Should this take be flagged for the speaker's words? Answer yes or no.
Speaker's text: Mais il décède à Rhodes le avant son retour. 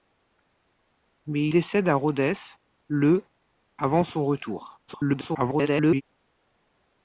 yes